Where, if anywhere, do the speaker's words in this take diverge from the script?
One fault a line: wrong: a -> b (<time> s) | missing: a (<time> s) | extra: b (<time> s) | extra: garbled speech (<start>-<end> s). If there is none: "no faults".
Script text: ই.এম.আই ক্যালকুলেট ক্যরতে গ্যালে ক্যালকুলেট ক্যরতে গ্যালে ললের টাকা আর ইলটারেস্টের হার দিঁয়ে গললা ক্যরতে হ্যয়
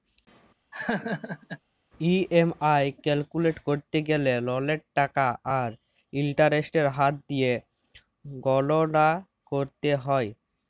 missing: ক্যালকুলেট ক্যরতে গ্যালে (4.3 s)